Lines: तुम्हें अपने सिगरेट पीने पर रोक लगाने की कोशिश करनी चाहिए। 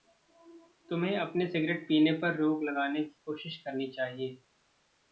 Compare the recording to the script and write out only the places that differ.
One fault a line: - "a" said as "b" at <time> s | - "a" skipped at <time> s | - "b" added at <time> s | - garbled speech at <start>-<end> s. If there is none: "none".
none